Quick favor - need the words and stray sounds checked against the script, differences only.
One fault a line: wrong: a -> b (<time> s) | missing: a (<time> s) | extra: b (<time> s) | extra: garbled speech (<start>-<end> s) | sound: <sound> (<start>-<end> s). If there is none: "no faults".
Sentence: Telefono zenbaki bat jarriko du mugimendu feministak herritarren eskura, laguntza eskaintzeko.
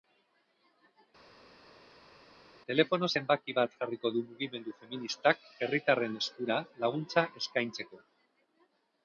no faults